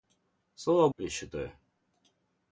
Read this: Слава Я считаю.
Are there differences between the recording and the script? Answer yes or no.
no